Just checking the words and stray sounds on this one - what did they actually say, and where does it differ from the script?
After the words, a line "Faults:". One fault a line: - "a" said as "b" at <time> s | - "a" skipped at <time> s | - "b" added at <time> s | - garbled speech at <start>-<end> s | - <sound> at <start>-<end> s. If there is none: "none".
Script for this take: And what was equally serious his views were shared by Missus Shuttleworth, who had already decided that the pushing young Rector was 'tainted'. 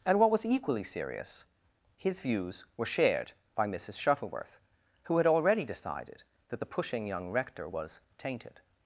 And what was equally serious his views were shared by Missus Shuttleworth, who had already decided that the pushing young Rector was 'tainted'.
Faults:
none